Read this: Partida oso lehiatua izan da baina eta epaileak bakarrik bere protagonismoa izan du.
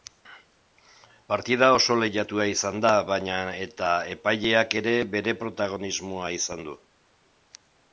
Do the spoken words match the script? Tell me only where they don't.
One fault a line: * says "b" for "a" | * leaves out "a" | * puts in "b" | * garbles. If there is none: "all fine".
* says "ere" for "bakarrik"